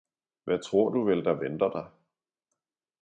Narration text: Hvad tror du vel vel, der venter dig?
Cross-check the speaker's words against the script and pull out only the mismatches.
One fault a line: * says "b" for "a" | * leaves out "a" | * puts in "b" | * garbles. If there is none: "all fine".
* leaves out "vel"